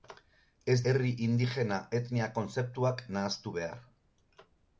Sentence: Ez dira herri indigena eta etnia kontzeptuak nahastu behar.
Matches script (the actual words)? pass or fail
fail